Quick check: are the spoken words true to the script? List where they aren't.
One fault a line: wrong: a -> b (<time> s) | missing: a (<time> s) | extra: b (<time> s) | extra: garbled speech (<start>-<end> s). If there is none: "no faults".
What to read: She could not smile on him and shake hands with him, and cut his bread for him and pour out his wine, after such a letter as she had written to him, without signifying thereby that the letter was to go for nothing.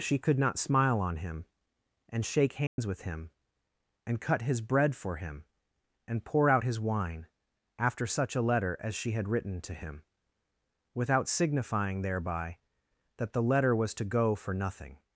no faults